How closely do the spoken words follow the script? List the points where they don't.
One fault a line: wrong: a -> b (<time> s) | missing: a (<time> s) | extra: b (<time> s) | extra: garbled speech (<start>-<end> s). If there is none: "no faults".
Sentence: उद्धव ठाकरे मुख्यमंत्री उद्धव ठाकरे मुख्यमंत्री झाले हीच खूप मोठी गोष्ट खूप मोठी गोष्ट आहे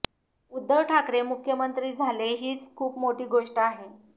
missing: उद्धव ठाकरे मुख्यमंत्री (1.9 s)
missing: खूप मोठी गोष्ट (3.6 s)